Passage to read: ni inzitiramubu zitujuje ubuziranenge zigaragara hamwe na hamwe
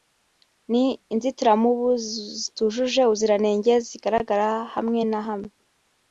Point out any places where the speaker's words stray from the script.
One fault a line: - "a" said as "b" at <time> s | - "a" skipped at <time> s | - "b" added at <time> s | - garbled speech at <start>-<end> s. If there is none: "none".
none